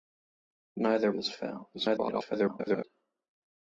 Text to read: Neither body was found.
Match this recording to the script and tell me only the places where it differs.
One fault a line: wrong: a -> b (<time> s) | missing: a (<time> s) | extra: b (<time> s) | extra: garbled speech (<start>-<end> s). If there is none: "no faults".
missing: body (1.1 s)
extra: garbled speech (1.7-2.8 s)